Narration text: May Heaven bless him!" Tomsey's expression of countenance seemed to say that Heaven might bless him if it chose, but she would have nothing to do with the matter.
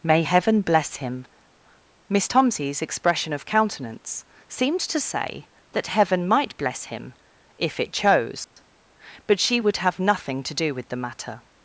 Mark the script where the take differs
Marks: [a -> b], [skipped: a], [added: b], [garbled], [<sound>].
May Heaven bless him!" [added: Miss] Tomsey's expression of countenance seemed to say that Heaven might bless him if it chose, [dropout] but she would have nothing to do with the matter.